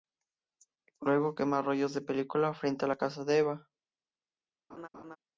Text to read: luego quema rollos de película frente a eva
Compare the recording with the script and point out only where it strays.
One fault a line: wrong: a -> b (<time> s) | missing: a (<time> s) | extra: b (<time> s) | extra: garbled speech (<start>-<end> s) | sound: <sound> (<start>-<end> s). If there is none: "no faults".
extra: la casa de (2.9 s)
sound: laugh (4.7-5.2 s)